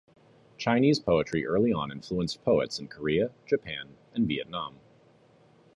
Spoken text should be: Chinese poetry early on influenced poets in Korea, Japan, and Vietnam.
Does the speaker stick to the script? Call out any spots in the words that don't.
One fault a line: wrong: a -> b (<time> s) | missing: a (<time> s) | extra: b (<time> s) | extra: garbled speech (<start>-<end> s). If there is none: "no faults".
no faults